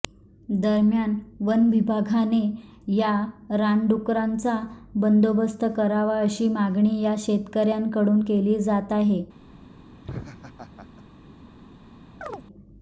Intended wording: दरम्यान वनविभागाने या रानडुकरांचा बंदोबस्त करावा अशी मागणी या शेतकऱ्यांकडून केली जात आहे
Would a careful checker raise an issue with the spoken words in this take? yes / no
no